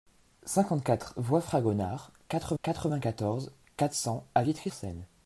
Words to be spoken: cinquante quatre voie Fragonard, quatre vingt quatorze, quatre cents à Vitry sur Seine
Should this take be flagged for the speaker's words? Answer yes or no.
yes